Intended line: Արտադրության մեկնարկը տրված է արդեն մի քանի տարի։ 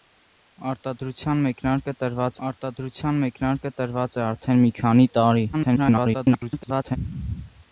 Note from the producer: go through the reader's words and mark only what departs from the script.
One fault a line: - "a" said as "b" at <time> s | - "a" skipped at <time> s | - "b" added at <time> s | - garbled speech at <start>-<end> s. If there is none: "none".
- "արտադրության մեկնարկը տրված" added at 2.5 s
- garbled speech at 5.5-7.0 s